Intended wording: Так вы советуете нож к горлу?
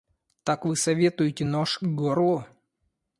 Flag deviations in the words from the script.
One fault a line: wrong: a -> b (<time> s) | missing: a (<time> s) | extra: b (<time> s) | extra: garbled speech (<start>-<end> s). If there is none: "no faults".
no faults